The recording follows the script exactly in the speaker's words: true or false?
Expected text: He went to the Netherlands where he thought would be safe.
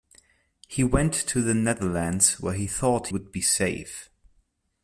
true